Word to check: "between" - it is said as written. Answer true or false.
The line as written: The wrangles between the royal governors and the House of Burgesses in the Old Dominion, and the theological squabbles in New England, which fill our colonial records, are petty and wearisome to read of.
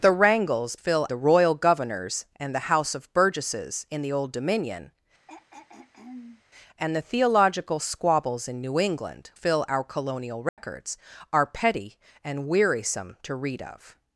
false